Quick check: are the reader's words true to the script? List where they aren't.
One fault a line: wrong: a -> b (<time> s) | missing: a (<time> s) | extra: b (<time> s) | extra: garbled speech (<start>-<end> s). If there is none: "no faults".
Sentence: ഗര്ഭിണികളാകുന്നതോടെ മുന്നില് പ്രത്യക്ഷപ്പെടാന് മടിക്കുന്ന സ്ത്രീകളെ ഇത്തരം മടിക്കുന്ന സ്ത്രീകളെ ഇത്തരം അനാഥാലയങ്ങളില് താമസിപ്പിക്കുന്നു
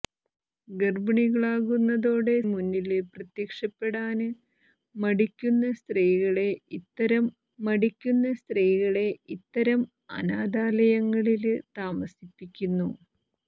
no faults